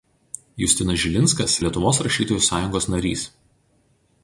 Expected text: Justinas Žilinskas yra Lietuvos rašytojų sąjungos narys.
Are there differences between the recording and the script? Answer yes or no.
yes